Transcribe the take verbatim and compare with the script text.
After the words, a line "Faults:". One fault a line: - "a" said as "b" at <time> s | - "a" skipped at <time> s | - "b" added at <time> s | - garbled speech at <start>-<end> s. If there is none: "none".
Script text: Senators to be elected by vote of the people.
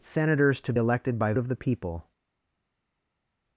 Senators to elected by of the people.
Faults:
- "be" skipped at 0.7 s
- "vote" skipped at 1.3 s